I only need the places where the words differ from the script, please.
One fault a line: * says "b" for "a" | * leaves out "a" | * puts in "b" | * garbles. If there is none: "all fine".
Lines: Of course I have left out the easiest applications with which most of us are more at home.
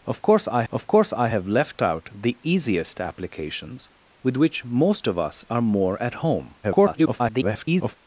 * puts in "of course I"
* garbles